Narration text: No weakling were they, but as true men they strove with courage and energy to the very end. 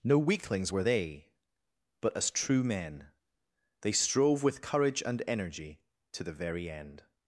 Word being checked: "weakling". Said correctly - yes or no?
no